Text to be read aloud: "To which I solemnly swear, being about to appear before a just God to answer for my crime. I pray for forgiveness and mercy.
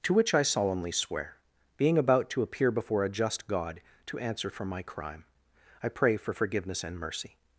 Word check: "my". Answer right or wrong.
right